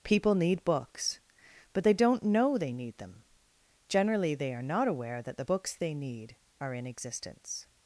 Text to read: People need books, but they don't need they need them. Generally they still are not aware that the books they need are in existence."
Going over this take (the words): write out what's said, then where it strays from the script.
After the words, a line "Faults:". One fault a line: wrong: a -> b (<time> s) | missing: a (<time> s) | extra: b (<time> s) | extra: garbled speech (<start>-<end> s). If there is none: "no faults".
People need books, but they don't know they need them. Generally they are not aware that the books they need are in existence."
Faults:
wrong: need -> know (2.2 s)
missing: still (4.5 s)